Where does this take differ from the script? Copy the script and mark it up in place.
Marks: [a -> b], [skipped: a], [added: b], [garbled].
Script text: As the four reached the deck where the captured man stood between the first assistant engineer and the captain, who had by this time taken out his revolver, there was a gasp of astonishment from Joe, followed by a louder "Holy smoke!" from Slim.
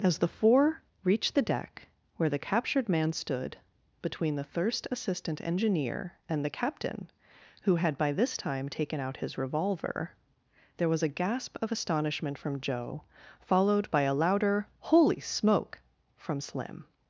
As the four reached the deck where the captured man stood between the [first -> thirst] assistant engineer and the captain, who had by this time taken out his revolver, there was a gasp of astonishment from Joe, followed by a louder "Holy smoke!" from Slim.